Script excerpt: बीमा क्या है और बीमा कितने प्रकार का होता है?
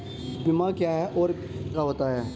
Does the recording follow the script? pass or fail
fail